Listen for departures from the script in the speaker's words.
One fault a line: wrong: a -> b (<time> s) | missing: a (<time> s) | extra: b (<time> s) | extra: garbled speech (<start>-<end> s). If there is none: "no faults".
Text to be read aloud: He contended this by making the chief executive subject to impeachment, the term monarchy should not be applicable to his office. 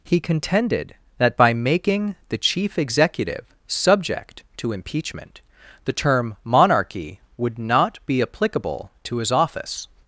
wrong: this -> that (1.2 s)
wrong: should -> would (7.4 s)